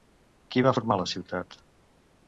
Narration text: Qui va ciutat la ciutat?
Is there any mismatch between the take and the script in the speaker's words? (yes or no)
yes